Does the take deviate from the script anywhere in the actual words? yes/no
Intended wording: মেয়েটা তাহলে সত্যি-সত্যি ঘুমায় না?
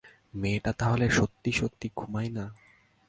no